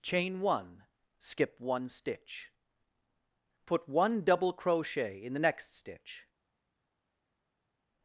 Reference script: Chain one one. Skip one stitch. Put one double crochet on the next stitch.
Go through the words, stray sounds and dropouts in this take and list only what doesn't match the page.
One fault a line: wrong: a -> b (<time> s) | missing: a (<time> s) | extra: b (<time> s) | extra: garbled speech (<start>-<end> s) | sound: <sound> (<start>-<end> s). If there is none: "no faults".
missing: one (0.8 s)
wrong: on -> in (5.2 s)